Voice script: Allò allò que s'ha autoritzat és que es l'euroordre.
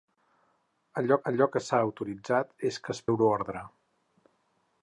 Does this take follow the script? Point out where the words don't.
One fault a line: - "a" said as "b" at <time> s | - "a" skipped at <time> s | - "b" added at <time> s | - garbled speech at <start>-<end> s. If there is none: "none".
none